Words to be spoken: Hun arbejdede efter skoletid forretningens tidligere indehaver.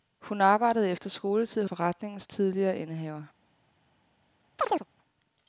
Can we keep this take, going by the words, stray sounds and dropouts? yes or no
no